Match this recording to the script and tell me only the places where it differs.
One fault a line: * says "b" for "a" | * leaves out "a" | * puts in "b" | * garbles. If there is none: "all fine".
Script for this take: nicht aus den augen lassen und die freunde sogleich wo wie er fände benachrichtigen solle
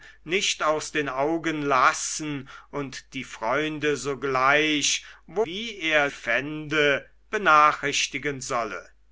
all fine